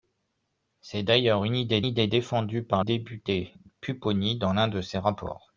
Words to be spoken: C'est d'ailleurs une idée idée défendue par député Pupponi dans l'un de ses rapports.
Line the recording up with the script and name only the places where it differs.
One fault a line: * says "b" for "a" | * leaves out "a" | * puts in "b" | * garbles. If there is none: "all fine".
all fine